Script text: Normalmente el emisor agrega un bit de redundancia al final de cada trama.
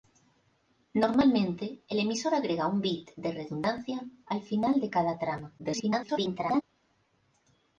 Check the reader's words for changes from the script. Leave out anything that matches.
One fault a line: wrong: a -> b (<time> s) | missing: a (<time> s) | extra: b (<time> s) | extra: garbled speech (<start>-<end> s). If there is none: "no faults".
extra: garbled speech (5.6-6.6 s)